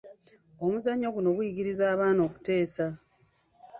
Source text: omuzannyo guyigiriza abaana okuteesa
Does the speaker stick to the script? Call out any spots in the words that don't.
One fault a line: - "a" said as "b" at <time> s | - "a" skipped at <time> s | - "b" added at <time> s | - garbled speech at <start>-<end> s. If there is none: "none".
- "guno" added at 1.1 s